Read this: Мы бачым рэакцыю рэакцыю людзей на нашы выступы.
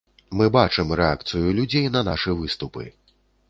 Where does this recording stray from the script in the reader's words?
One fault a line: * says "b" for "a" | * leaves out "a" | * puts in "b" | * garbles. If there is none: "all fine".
* leaves out "рэакцыю"